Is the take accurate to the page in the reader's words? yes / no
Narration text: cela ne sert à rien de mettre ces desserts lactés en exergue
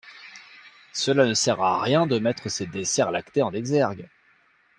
yes